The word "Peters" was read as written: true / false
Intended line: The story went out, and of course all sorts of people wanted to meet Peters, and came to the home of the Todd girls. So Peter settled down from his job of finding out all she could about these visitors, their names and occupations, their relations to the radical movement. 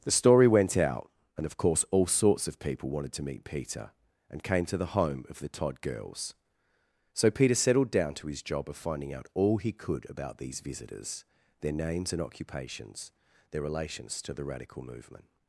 false